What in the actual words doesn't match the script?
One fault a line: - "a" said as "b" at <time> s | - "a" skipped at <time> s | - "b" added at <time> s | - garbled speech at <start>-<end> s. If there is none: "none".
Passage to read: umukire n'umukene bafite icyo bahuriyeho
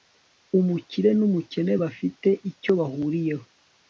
none